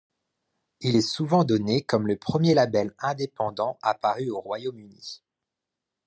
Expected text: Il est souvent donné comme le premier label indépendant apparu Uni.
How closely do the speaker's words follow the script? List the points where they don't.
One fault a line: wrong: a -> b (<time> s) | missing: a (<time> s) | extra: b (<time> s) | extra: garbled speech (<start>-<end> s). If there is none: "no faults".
extra: au Royaume (4.3 s)